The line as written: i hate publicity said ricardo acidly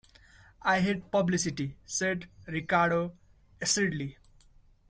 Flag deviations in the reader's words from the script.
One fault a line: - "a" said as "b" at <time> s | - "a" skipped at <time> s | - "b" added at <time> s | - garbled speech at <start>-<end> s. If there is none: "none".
none